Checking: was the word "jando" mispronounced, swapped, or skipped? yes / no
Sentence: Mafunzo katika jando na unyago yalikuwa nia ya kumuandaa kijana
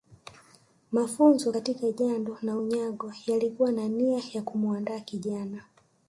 no